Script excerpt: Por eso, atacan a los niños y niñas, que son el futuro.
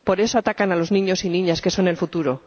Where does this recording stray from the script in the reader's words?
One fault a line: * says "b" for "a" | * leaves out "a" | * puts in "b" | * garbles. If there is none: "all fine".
all fine